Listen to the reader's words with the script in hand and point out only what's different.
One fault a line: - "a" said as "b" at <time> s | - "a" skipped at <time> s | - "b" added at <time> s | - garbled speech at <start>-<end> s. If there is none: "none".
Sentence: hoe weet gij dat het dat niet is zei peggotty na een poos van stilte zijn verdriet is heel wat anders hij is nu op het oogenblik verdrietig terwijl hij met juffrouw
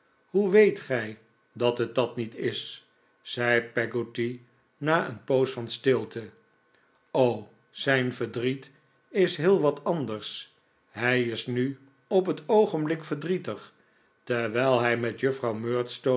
none